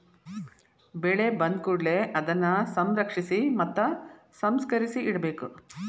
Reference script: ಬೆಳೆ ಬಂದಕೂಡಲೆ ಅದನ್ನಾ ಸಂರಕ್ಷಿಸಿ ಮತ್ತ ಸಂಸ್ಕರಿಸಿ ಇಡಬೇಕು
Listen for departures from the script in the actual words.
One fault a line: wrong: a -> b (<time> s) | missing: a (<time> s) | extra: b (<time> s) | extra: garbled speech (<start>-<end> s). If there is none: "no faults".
no faults